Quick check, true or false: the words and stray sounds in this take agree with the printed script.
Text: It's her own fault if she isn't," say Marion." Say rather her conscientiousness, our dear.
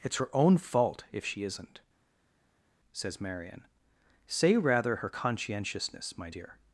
false